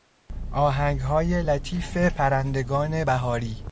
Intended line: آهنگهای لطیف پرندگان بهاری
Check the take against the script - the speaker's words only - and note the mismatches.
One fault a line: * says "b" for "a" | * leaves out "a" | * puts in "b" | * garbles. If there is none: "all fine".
all fine